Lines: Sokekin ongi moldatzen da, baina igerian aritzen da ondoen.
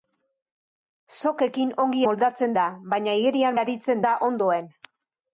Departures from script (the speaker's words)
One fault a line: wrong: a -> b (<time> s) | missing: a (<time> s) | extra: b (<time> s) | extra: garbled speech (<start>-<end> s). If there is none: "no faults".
no faults